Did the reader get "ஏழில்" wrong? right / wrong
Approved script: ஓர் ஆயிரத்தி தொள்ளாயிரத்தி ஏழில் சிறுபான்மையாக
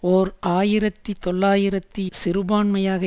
wrong